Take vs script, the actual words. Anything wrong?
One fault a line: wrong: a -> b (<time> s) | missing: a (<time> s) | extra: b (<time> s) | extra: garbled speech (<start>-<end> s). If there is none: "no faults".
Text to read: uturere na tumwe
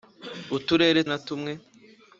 no faults